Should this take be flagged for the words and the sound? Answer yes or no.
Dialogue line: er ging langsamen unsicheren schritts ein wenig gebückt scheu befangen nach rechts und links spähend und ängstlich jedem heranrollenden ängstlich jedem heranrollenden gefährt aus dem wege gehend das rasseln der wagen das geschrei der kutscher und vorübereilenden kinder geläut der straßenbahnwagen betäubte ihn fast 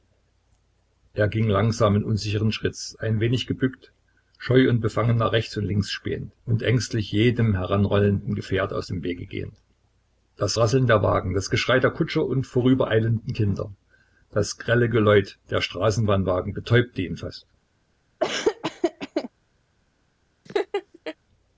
yes